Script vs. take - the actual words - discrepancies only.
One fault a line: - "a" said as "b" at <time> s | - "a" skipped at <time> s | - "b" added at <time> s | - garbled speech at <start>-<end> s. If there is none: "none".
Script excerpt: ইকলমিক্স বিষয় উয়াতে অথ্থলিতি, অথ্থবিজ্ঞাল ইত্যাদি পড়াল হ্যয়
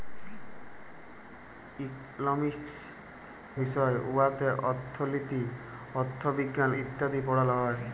none